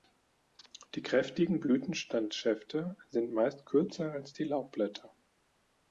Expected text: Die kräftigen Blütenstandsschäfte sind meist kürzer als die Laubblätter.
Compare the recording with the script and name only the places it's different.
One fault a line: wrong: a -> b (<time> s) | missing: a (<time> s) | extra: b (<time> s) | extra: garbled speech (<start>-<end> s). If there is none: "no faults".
no faults